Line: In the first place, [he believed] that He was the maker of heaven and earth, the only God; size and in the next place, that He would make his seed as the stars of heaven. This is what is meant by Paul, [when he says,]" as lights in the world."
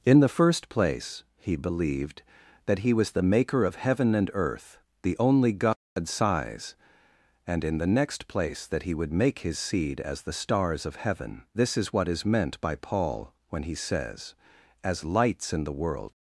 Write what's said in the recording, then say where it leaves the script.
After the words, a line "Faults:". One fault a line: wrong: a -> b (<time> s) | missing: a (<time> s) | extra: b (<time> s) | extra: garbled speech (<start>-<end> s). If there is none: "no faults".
In the first place, [he believed] that He was the maker of heaven and earth, the only God; size and in the next place, that He would make his seed as the stars of heaven. This is what is meant by Paul, [when he says,]" as lights in the world."
Faults:
no faults